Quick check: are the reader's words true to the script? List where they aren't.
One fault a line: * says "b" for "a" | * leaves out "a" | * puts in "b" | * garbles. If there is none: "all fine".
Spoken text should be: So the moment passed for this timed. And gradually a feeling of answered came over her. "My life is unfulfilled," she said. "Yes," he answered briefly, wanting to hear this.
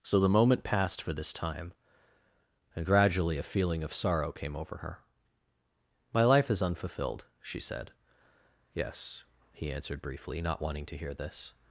* says "time" for "timed"
* says "sorrow" for "answered"
* puts in "not"